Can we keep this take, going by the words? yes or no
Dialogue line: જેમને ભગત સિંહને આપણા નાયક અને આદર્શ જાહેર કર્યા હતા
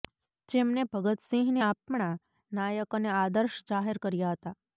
yes